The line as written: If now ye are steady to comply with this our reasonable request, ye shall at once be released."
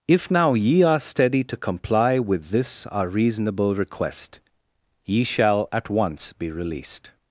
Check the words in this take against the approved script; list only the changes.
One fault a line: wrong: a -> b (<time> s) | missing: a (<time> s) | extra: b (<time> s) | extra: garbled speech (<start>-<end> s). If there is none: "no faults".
no faults